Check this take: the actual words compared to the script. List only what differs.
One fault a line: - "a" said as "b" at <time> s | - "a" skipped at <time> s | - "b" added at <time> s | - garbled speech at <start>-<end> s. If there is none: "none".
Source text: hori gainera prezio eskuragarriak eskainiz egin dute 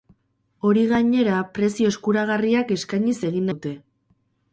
none